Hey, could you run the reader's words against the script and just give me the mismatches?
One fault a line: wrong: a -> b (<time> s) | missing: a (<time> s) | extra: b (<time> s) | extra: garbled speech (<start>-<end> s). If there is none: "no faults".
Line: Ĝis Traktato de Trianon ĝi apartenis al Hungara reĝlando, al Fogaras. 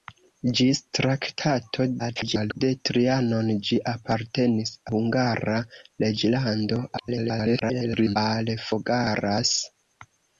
extra: garbled speech (2.0-2.6 s)
missing: al (4.8 s)
extra: garbled speech (7.0-8.2 s)